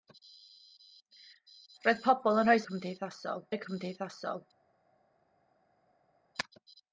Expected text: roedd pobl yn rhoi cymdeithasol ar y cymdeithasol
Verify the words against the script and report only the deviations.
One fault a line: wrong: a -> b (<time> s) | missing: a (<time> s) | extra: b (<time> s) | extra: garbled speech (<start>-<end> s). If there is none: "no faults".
no faults